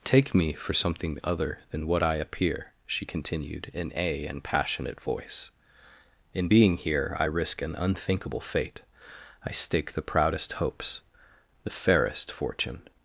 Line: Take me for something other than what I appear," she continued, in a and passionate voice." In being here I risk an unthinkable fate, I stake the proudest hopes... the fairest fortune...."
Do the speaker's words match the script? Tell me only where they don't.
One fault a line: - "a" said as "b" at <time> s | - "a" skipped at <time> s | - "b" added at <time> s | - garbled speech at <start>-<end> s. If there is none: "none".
none